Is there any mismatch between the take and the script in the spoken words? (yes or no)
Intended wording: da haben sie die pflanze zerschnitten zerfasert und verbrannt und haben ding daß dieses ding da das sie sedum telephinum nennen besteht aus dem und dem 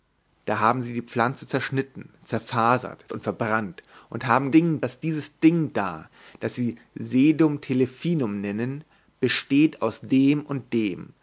no